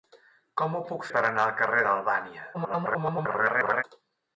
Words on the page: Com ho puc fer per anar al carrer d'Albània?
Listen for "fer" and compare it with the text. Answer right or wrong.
wrong